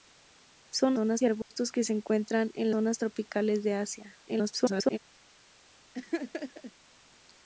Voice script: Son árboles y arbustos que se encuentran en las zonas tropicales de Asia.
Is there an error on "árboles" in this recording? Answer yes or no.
yes